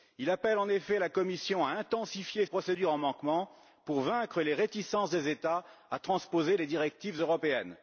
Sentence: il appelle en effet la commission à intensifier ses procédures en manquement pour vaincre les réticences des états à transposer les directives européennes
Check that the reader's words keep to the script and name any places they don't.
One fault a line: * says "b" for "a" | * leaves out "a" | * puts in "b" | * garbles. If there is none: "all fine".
* leaves out "ses"